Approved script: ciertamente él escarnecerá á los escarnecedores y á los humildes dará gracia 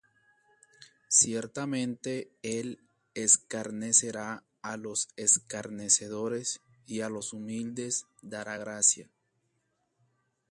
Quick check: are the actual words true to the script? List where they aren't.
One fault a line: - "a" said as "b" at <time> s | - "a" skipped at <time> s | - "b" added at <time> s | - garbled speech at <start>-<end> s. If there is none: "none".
none